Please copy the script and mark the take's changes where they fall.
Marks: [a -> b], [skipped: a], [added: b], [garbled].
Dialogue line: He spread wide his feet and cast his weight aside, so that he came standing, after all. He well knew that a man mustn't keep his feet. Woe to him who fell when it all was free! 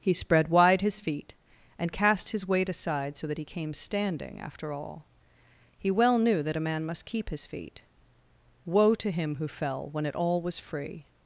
He spread wide his feet and cast his weight aside, so that he came standing, after all. He well knew that a man [mustn't -> must] keep his feet. Woe to him who fell when it all was free!